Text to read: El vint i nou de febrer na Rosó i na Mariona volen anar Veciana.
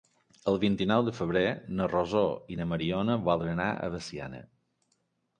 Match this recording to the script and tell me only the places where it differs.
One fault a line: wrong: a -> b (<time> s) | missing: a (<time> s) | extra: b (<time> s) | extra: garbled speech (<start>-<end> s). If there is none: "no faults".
extra: a (3.7 s)